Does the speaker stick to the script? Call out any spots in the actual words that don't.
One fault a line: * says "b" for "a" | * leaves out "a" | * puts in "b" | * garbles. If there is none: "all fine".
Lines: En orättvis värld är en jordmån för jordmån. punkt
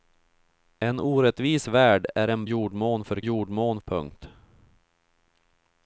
all fine